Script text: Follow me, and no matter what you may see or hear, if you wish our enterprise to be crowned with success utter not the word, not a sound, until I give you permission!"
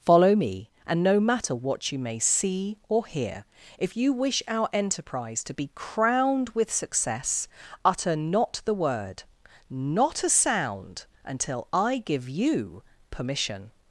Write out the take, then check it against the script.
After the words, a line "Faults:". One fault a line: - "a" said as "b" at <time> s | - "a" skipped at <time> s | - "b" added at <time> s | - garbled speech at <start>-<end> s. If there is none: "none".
Follow me, and no matter what you may see or hear, if you wish our enterprise to be crowned with success utter not the word, not a sound, until I give you permission!"
Faults:
none